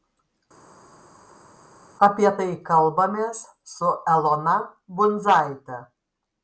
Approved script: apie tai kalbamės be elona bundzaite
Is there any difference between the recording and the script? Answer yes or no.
yes